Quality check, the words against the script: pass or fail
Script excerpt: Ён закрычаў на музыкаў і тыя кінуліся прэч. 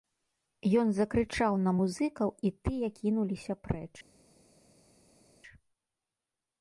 pass